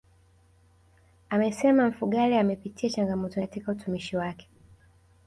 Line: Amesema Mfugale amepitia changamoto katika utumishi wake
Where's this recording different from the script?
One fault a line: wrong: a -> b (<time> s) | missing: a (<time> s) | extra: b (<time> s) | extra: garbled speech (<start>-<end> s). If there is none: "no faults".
no faults